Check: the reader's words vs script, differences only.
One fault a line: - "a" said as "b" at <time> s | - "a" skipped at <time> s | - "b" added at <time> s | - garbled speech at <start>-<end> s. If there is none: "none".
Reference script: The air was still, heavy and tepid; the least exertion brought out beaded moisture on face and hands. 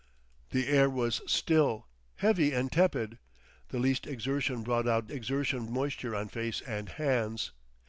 - "beaded" said as "exertion" at 5.1 s